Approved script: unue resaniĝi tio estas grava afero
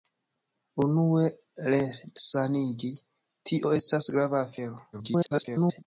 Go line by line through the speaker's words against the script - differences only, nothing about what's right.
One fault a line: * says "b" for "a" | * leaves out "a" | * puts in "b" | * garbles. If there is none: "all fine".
* garbles